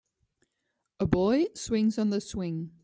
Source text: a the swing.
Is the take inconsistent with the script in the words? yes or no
yes